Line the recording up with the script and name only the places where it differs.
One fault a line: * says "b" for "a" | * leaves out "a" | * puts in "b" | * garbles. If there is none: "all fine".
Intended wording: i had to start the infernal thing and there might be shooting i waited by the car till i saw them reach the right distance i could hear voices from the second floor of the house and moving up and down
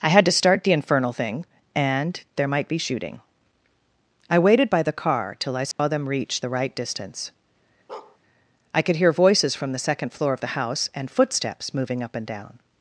* puts in "footsteps"